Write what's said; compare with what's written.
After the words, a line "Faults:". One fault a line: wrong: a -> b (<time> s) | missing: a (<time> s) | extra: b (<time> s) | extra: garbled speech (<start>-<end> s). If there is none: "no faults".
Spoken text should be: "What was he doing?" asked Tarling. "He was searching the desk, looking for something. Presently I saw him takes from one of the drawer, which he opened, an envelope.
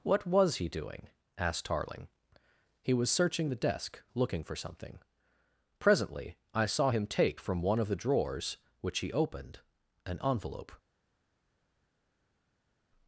"What was he doing?" asked Tarling. "He was searching the desk, looking for something. Presently I saw him take from one of the drawers, which he opened, an envelope.
Faults:
wrong: takes -> take (7.0 s)
wrong: drawer -> drawers (8.0 s)